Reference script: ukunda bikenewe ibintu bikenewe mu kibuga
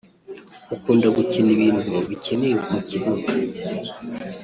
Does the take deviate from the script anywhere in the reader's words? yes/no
yes